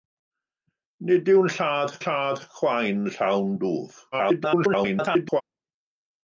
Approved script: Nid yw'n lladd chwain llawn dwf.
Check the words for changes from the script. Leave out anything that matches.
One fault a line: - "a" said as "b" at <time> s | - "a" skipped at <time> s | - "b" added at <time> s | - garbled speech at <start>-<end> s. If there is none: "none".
- "lladd" added at 2.0 s
- garbled speech at 4.1-5.4 s